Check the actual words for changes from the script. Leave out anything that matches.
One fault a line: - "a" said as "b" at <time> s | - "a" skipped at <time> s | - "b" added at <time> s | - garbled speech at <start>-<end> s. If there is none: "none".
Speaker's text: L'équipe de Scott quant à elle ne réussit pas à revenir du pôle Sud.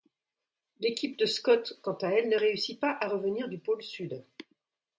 none